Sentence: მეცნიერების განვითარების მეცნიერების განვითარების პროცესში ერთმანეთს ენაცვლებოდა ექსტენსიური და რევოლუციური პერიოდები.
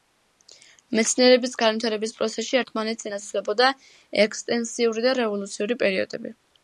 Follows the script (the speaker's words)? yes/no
no